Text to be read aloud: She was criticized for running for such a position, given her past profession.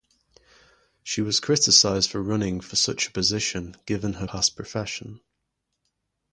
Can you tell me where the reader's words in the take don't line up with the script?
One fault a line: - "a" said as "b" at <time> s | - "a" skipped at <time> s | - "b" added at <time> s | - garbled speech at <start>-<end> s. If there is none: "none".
none